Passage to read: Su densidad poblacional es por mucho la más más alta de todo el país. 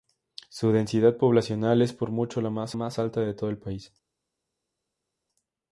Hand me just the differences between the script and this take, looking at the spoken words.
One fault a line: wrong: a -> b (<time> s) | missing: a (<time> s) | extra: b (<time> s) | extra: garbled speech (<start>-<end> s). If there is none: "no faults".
no faults